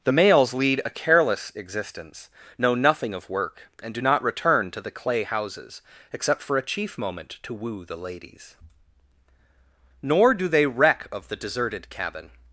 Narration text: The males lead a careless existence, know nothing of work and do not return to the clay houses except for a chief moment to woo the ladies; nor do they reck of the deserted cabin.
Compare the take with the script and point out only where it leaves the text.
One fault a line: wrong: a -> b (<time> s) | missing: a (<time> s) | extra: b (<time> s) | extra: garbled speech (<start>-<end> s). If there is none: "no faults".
no faults